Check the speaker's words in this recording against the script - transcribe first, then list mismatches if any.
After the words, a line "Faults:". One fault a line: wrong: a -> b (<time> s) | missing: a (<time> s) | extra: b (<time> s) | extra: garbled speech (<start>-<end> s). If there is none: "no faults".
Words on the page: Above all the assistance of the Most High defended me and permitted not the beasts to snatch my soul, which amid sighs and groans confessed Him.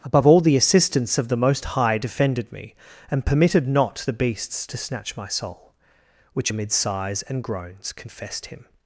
Above all the assistance of the Most High defended me and permitted not the beasts to snatch my soul, which amid sighs and groans confessed Him.
Faults:
no faults